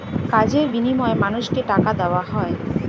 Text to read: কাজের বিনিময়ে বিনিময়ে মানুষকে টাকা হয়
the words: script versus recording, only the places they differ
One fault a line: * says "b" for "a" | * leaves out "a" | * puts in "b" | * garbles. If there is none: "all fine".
* leaves out "বিনিময়ে"
* puts in "দেওয়া"